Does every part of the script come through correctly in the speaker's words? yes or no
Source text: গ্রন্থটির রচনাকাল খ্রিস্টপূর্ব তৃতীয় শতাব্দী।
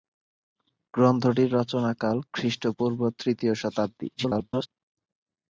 no